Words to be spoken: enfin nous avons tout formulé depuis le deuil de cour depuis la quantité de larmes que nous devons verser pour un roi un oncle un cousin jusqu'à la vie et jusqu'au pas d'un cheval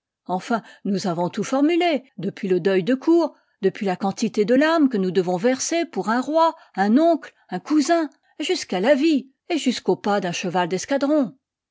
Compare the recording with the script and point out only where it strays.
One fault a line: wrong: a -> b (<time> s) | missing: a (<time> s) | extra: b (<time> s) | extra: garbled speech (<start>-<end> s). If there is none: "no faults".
no faults